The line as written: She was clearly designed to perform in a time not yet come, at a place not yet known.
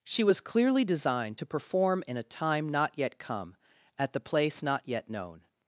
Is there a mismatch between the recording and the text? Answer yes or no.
yes